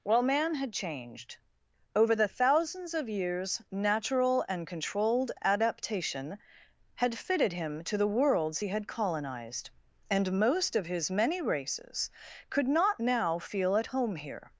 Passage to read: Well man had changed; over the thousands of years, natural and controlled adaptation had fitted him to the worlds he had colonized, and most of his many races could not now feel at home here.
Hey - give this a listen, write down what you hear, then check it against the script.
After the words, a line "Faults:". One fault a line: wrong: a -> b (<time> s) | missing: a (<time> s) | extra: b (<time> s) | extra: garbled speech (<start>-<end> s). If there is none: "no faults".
Well man had changed; over the thousands of years, natural and controlled adaptation had fitted him to the worlds he had colonized, and most of his many races could not now feel at home here.
Faults:
no faults